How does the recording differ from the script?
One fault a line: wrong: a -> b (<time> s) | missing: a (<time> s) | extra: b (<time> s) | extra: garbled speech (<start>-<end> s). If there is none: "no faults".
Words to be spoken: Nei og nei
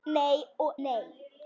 no faults